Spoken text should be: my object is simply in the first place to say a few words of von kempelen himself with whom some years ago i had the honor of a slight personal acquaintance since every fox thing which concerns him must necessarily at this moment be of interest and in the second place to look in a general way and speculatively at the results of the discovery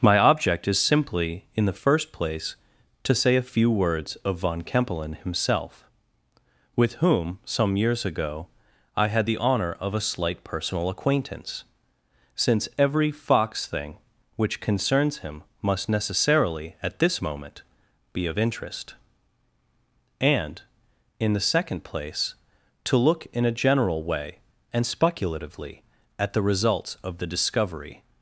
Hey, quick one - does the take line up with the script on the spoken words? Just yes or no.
yes